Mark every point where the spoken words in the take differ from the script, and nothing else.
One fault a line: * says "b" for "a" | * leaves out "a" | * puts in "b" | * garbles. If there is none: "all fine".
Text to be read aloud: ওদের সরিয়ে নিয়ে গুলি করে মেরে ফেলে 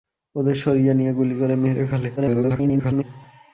* garbles